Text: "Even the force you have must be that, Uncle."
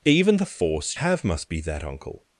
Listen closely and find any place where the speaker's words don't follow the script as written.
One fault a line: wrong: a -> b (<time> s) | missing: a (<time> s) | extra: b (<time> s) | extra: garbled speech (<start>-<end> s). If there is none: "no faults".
missing: you (1.0 s)